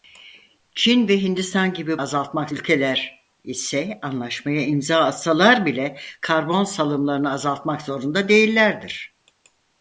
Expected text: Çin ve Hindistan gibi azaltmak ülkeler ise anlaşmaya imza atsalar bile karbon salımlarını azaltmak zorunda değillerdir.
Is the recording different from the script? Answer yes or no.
no